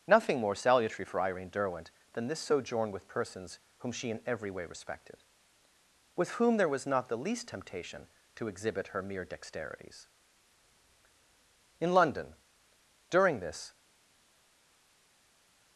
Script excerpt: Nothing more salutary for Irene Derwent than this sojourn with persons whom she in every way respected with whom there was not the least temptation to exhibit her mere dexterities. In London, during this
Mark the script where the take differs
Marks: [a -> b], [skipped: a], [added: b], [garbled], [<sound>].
Nothing more salutary for Irene Derwent than this sojourn with persons whom she in every way respected with whom there was not the least temptation to exhibit her mere dexterities. In London, during this